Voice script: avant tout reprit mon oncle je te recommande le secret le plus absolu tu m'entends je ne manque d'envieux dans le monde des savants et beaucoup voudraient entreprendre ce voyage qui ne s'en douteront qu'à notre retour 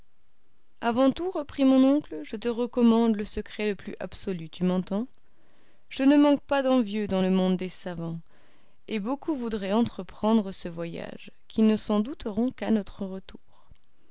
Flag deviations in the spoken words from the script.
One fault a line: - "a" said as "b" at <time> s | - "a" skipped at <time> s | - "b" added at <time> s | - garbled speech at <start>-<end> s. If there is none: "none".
- "pas" added at 6.4 s